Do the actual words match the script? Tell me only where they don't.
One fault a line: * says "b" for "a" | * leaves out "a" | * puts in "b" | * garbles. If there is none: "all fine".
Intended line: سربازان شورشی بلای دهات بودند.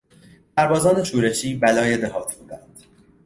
all fine